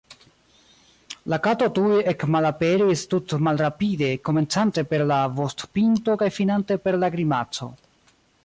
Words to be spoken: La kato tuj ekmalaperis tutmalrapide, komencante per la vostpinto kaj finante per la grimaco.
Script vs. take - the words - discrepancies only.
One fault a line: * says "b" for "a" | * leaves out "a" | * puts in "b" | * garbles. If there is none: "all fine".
all fine